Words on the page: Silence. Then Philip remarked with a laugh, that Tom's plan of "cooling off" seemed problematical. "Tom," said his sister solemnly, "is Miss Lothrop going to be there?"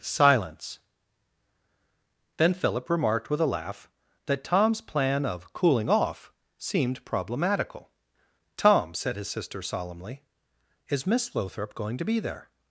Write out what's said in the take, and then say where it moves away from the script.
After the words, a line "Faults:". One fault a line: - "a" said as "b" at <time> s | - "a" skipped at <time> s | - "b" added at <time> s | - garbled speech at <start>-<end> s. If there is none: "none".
Silence. Then Philip remarked with a laugh, that Tom's plan of "cooling off" seemed problematical. "Tom," said his sister solemnly, "is Miss Lothrop going to be there?"
Faults:
none